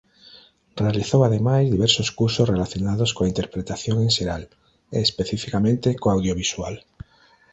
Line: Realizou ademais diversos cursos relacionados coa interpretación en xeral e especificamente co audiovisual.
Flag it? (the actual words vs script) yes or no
no